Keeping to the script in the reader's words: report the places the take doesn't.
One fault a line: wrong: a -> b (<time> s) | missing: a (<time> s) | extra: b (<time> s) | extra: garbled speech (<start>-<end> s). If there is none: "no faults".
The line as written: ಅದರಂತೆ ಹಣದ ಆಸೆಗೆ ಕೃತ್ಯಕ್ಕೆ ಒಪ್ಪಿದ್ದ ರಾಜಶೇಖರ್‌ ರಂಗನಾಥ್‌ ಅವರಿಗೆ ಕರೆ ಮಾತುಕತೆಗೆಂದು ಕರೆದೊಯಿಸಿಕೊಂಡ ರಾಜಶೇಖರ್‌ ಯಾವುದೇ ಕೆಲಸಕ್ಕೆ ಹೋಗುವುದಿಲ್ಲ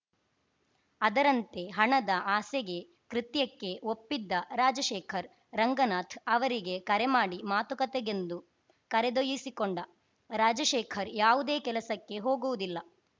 extra: ಮಾಡಿ (7.1 s)